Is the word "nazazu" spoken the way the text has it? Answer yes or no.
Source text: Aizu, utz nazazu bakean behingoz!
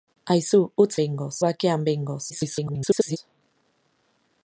no